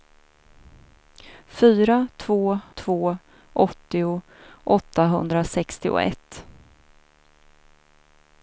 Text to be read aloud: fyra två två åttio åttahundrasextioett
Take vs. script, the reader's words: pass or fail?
pass